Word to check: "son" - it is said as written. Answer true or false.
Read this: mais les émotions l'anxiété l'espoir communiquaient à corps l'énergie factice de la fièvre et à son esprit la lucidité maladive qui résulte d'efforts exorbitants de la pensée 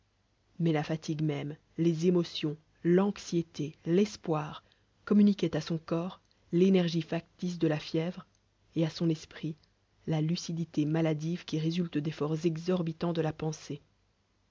true